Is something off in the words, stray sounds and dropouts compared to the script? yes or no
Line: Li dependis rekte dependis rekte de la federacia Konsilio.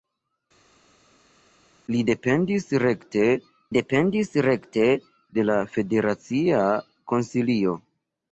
no